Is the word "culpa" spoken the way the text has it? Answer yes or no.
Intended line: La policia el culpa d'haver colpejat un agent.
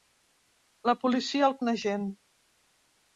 no